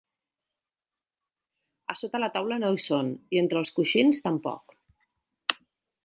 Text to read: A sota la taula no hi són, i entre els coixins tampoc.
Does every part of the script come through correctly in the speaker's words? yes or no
yes